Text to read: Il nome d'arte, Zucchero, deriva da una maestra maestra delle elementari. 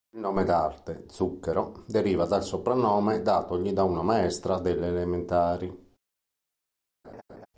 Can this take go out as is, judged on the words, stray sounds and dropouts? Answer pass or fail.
fail